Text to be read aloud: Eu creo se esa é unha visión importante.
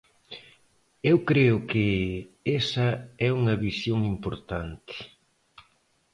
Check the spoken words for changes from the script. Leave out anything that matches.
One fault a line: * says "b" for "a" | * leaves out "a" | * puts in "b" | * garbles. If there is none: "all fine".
* says "que" for "se"